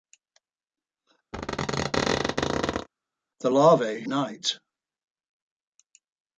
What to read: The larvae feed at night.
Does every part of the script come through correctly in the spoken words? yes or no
no